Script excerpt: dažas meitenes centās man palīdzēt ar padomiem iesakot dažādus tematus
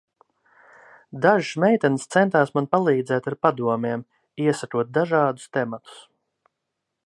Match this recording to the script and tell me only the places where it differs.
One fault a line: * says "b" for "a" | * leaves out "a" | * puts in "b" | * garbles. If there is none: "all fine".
all fine